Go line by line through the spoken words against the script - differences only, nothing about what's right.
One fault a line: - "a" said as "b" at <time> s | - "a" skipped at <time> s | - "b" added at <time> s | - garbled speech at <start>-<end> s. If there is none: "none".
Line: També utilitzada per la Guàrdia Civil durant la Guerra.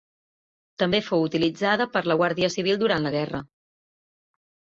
- "fou" added at 1.1 s